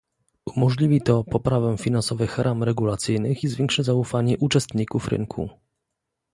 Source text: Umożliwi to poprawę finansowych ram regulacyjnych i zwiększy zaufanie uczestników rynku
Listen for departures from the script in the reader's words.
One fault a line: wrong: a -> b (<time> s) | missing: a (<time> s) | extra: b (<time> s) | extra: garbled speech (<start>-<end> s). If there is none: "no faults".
no faults